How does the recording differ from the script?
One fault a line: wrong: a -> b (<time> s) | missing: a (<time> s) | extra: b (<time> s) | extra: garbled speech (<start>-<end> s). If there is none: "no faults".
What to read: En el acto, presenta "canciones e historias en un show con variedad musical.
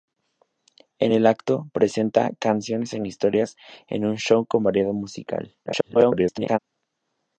extra: garbled speech (5.7-6.6 s)